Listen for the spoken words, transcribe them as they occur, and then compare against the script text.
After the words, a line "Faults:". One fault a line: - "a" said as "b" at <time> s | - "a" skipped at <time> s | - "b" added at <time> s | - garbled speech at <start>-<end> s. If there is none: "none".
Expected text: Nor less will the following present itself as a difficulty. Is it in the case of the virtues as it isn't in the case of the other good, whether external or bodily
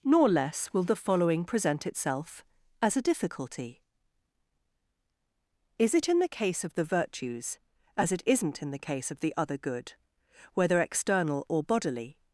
Nor less will the following present itself as a difficulty. Is it in the case of the virtues as it isn't in the case of the other good, whether external or bodily
Faults:
none